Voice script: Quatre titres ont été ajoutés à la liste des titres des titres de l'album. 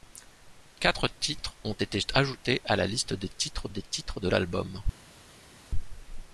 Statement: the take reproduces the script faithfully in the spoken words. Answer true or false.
true